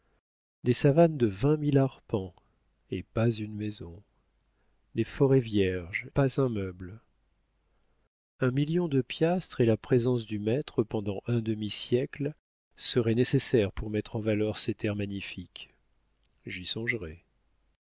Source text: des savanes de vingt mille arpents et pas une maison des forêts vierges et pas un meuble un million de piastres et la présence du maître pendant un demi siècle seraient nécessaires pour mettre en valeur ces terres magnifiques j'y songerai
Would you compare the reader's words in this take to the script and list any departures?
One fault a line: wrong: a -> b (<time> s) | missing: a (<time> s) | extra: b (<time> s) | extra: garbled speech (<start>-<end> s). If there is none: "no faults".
missing: et (6.1 s)